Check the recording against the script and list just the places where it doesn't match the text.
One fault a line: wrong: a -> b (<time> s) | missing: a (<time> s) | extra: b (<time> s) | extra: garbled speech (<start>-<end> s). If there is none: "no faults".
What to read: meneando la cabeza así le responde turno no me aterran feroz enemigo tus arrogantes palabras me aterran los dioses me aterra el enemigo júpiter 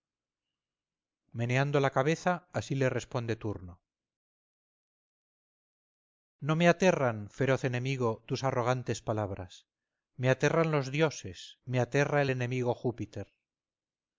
no faults